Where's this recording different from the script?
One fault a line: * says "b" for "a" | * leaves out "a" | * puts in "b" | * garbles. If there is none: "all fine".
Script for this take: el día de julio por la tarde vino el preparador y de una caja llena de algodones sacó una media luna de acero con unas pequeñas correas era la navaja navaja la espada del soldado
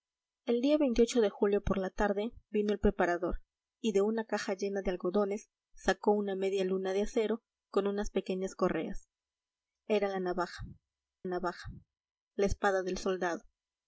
all fine